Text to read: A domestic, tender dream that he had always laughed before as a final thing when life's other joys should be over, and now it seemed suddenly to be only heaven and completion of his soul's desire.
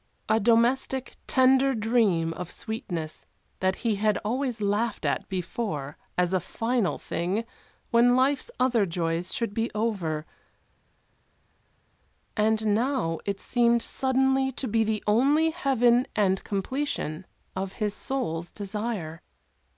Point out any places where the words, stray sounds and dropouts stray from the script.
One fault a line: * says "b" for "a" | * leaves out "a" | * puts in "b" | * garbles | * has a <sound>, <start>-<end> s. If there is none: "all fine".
* puts in "of sweetness"
* puts in "at"
* puts in "the"